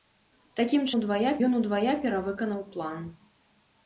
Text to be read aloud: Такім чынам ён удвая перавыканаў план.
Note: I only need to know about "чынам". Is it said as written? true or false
false